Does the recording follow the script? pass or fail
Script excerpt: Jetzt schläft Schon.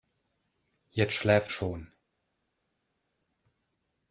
pass